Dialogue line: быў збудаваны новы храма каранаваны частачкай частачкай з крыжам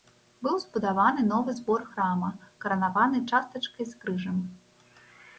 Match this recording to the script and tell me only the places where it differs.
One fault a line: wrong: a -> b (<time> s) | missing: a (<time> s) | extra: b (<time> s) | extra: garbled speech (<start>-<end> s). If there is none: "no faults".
extra: збор (1.6 s)
missing: частачкай (3.9 s)